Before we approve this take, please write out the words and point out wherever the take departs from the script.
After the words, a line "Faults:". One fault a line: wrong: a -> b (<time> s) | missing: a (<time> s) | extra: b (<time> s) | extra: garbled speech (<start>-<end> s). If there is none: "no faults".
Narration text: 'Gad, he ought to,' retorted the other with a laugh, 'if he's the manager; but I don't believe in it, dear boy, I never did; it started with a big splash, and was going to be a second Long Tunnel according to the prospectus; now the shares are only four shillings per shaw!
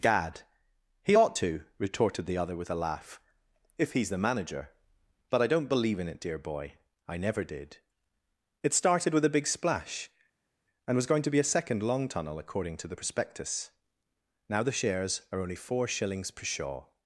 'Gad, he ought to,' retorted the other with a laugh, 'if he's the manager; but I don't believe in it, dear boy, I never did; it started with a big splash, and was going to be a second Long Tunnel according to the prospectus; now the shares are only four shillings per shaw!
Faults:
no faults